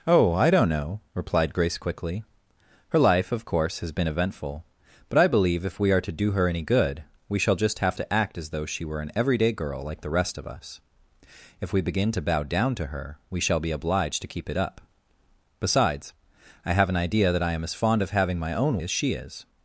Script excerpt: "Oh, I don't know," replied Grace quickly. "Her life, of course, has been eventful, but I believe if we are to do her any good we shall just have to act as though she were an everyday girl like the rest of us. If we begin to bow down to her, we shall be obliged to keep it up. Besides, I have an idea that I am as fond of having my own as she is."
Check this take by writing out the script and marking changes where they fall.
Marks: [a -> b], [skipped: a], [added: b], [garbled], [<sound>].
"Oh, I don't know," replied Grace quickly. "Her life, of course, has been eventful, but I believe if we are to do her any good we shall just have to act as though she were an everyday girl like the rest of us. If we begin to bow down to her, we shall be obliged to keep it up. Besides, I have an idea that I am as fond of having my own as she is."